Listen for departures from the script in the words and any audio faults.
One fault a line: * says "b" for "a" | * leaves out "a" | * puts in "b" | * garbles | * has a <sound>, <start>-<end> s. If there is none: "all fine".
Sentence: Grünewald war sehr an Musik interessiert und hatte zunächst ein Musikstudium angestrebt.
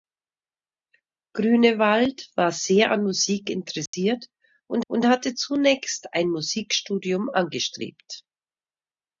* has a dropout, 3.9-3.9 s
* puts in "und"